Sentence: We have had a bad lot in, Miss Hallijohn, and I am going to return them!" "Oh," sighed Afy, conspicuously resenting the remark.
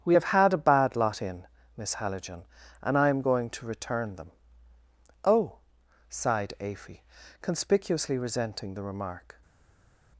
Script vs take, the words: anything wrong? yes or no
no